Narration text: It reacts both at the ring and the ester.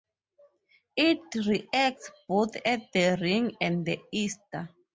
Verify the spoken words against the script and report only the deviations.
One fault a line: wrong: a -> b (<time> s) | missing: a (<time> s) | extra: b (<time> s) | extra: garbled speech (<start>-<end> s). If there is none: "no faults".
no faults